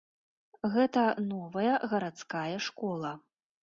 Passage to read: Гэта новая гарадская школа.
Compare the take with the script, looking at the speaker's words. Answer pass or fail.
pass